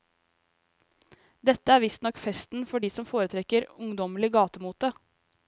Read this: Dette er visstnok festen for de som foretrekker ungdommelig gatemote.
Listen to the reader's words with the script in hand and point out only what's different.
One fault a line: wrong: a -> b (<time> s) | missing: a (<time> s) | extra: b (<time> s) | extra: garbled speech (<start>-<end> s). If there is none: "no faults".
no faults